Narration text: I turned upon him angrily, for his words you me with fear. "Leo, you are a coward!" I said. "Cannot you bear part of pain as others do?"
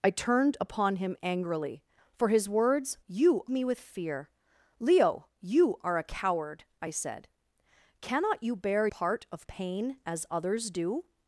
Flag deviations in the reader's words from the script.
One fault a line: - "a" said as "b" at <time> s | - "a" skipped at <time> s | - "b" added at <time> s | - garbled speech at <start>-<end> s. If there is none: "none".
none